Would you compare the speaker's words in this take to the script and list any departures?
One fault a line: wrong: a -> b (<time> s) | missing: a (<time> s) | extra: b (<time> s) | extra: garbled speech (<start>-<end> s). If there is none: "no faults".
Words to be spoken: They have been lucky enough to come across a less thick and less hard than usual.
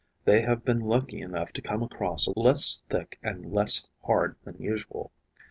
no faults